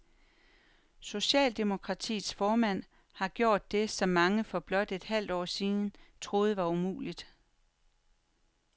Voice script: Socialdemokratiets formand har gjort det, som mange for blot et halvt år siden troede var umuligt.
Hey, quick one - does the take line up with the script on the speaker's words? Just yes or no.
yes